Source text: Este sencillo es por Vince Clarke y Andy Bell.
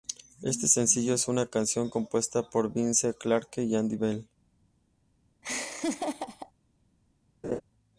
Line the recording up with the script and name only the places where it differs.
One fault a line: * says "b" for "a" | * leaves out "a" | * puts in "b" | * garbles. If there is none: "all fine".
* puts in "una canción compuesta"